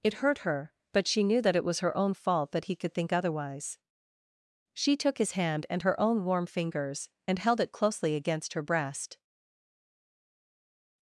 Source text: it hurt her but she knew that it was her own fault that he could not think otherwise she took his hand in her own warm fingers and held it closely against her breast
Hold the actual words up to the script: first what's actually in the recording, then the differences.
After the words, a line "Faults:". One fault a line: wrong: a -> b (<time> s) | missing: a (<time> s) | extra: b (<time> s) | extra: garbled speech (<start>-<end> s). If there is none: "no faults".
it hurt her but she knew that it was her own fault that he could think otherwise she took his hand and her own warm fingers and held it closely against her breast
Faults:
missing: not (2.9 s)
wrong: in -> and (5.7 s)